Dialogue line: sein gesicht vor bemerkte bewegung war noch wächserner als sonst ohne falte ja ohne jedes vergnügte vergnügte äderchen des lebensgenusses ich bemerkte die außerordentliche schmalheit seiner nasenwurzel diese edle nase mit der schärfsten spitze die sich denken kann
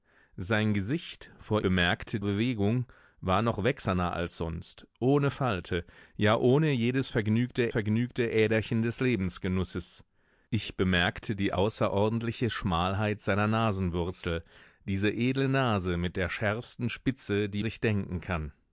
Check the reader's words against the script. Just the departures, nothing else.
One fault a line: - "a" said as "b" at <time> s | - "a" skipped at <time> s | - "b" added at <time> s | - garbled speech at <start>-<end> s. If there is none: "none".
none